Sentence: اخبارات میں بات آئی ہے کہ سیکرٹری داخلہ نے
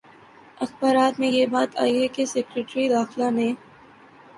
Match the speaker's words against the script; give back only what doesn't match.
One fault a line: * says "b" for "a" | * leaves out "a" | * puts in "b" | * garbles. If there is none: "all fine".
* puts in "یہ"